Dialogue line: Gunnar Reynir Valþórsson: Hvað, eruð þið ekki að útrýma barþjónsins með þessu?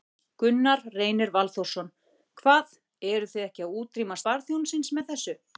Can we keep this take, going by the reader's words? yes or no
yes